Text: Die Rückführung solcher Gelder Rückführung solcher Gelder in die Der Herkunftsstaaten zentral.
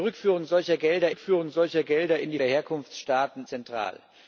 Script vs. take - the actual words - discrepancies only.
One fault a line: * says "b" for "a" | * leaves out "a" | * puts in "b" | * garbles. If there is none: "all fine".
all fine